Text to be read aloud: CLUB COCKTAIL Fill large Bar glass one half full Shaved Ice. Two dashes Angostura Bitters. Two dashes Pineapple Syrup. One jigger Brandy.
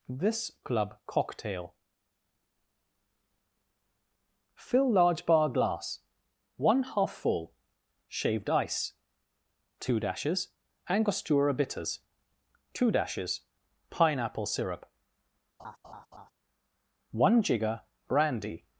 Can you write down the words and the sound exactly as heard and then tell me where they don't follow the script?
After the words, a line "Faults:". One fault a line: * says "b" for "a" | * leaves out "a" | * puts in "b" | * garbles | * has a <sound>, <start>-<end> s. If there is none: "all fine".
this CLUB COCKTAIL Fill large Bar glass one half full Shaved Ice. Two dashes Angostura Bitters. Two dashes Pineapple Syrup. One jigger Brandy.
Faults:
* puts in "this"
* has a laugh, 15.6-16.3 s